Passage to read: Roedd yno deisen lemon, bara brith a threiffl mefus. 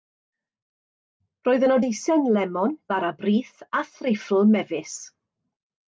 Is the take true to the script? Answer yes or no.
yes